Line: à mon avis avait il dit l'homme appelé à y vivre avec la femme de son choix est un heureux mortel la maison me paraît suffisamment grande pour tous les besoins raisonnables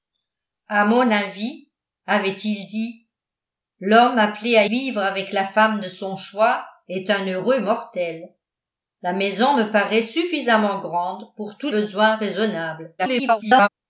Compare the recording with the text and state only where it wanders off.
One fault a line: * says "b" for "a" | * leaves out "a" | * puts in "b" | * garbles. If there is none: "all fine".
* leaves out "y"
* leaves out "les"
* garbles